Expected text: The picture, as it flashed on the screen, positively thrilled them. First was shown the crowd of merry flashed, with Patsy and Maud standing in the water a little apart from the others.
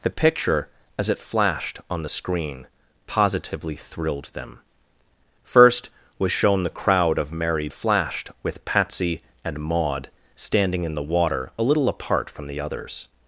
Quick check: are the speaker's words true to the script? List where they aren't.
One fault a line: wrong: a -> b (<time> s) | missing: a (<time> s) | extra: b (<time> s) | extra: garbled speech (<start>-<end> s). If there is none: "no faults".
no faults